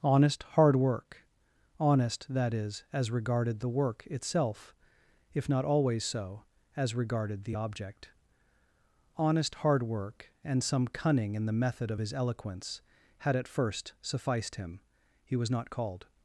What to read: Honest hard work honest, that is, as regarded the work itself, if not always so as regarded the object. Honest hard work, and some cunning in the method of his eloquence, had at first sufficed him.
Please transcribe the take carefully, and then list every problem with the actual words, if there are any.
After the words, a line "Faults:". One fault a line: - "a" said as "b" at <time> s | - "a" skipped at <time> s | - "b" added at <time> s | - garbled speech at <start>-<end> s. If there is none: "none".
Honest hard work honest, that is, as regarded the work itself, if not always so as regarded the object. Honest hard work, and some cunning in the method of his eloquence, had at first sufficed him. He was not called
Faults:
- "He was not called" added at 15.2 s